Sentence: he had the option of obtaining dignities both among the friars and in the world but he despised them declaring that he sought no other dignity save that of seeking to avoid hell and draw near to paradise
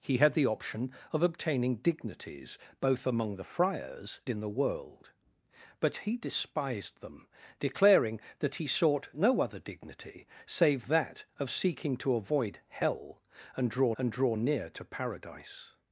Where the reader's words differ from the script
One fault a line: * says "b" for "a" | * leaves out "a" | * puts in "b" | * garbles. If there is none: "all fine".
* leaves out "and"
* puts in "and draw"